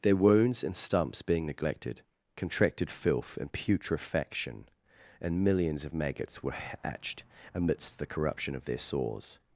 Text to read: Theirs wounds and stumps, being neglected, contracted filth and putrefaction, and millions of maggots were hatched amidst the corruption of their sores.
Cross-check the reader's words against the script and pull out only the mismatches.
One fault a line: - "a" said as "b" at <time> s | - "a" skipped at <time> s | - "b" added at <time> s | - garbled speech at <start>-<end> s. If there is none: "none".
- "Theirs" said as "Their" at 0.0 s